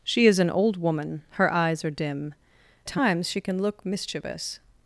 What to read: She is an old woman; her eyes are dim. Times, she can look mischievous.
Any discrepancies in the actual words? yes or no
no